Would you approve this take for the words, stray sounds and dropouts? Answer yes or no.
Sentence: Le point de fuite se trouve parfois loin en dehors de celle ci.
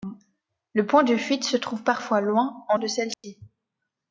no